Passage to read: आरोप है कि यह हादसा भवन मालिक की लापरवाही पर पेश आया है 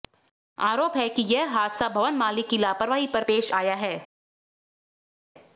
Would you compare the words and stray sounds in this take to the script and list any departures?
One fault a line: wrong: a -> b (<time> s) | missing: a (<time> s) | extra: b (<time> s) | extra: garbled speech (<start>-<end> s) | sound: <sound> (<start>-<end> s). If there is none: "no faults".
no faults